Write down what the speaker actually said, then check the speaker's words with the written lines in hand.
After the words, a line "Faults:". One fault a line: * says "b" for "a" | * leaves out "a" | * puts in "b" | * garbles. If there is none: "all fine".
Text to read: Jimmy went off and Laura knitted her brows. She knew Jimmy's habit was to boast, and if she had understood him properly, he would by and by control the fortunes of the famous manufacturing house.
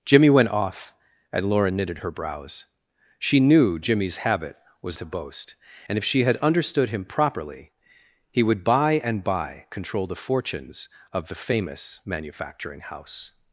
Jimmy went off and Laura knitted her brows. She knew Jimmy's habit was to boast, and if she had understood him properly, he would by and by control the fortunes of the famous manufacturing house.
Faults:
all fine